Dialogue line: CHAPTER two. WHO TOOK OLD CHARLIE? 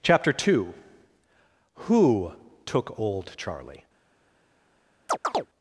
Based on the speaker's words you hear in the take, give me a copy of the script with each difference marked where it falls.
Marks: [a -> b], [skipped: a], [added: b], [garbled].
CHAPTER two. WHO TOOK OLD CHARLIE?